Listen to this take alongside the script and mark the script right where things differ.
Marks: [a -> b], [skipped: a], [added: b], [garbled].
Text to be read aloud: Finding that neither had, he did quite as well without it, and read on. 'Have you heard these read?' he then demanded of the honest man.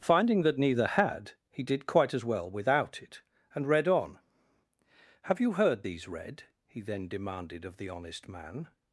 Finding that neither had, he did quite as well without it, and read on. 'Have you heard these read?' he then demanded of the honest man.